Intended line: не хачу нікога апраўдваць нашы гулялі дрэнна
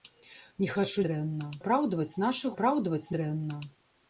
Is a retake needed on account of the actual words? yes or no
yes